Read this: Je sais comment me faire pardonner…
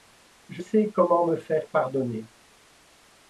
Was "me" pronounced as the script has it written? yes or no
yes